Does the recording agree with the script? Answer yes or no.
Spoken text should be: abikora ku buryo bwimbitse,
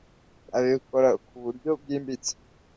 yes